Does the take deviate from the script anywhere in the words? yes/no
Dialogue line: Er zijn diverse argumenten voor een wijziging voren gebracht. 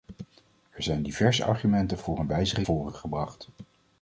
no